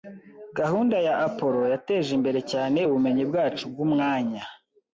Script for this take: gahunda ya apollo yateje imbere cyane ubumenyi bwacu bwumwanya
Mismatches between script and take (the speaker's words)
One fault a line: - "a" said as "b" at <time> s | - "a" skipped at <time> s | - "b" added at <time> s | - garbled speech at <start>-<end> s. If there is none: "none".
none